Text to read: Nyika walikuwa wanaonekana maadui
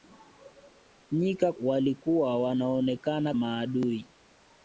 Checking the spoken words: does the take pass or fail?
pass